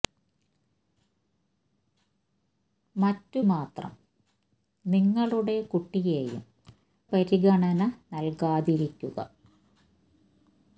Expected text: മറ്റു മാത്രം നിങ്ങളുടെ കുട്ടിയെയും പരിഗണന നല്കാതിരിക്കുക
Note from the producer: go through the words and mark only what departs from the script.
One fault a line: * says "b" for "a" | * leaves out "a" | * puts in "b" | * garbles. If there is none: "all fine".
all fine